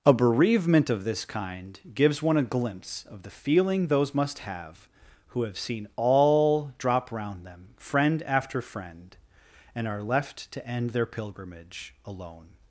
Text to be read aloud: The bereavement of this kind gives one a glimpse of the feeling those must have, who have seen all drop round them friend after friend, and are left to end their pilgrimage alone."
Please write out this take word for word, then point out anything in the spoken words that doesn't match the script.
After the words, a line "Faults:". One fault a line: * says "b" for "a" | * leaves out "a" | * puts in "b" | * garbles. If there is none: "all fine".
A bereavement of this kind gives one a glimpse of the feeling those must have, who have seen all drop round them friend after friend, and are left to end their pilgrimage alone."
Faults:
* says "A" for "The"